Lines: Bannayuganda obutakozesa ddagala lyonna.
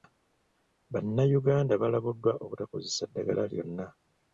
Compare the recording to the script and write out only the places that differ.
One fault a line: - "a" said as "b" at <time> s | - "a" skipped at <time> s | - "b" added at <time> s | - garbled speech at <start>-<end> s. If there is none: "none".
- "balabuddwa" added at 1.8 s